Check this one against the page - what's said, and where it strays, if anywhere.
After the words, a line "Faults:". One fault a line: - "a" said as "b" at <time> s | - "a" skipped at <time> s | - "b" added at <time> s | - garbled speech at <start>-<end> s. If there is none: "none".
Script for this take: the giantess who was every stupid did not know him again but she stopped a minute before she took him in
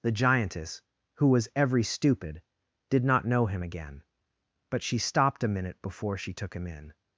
the giantess who was every stupid did not know him again but she stopped a minute before she took him in
Faults:
none